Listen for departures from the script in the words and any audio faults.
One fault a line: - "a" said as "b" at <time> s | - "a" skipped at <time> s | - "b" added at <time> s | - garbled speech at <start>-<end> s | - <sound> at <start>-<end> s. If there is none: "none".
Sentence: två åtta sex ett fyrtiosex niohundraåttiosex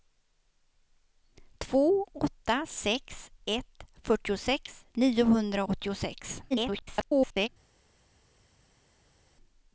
- garbled speech at 6.5-7.5 s